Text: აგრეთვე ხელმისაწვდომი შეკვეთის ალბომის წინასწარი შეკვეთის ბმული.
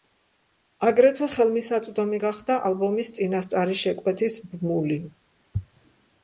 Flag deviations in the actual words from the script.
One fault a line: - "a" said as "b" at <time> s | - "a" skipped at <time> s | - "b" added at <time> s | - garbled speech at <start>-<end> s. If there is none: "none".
- "შეკვეთის" said as "გახდა" at 2.2 s